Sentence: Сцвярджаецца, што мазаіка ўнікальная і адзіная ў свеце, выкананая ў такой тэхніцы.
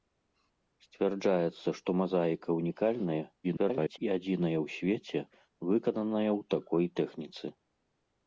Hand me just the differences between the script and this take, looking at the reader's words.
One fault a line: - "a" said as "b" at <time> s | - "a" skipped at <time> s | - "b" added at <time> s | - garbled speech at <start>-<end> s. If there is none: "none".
- garbled speech at 3.4-4.0 s